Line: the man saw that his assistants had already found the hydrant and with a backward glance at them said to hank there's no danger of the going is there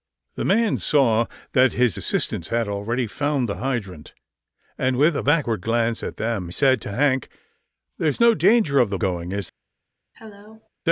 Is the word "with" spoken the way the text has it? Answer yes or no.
yes